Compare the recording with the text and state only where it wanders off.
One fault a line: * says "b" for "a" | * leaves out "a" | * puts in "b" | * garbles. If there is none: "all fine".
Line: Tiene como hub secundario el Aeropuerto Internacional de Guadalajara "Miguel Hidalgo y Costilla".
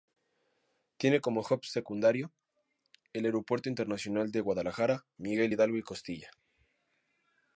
all fine